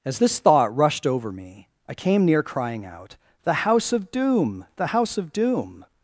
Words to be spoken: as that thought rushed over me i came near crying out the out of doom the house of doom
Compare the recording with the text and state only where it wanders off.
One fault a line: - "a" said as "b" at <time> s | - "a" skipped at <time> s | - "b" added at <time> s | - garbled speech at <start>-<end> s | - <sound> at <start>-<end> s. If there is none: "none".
- "that" said as "this" at 0.2 s
- "out" said as "house" at 3.5 s